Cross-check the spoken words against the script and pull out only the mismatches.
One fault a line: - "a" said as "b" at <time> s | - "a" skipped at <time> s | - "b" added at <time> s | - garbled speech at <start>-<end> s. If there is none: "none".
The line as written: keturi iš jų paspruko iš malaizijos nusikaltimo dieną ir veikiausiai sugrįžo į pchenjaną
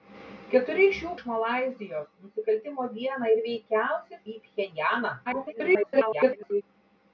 - "paspruko" skipped at 1.1 s
- "sugrįžo" skipped at 4.2 s
- garbled speech at 5.3-6.6 s